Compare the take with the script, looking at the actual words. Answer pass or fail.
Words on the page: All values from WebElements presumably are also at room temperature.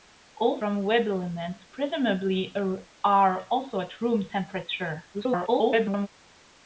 fail